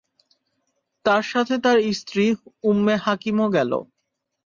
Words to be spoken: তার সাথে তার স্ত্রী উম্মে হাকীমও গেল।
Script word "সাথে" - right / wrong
right